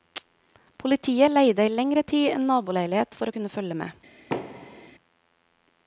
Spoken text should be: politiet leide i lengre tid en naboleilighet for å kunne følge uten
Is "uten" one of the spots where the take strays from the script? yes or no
yes